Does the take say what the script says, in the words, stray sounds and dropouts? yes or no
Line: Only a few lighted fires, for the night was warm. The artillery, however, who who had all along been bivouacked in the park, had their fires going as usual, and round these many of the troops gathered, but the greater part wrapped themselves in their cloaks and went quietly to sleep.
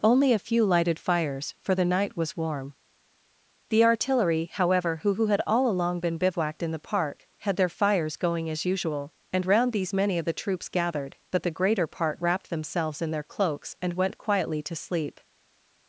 yes